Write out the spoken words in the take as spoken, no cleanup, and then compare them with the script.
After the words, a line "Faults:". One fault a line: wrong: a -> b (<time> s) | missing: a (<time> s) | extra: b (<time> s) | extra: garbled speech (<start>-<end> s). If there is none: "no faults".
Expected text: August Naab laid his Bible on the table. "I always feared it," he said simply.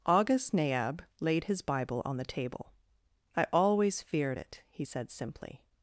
August Naab laid his Bible on the table. "I always feared it," he said simply.
Faults:
no faults